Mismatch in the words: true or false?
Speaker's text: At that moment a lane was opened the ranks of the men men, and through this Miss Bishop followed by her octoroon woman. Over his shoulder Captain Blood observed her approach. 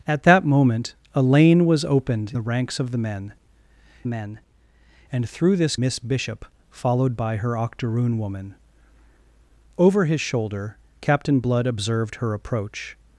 false